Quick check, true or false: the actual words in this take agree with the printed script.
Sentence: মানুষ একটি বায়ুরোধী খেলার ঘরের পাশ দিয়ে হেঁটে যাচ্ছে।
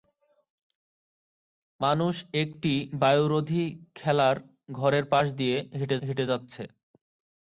false